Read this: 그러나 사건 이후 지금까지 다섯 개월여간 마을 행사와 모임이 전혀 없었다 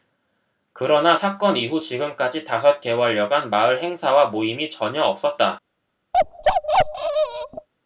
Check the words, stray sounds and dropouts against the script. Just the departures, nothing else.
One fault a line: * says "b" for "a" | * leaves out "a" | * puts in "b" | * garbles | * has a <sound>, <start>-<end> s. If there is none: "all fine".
* has a bark, 6.1-7.7 s